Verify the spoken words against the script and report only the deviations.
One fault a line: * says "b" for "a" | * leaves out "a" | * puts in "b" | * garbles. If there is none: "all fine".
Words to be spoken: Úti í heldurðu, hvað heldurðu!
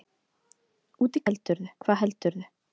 all fine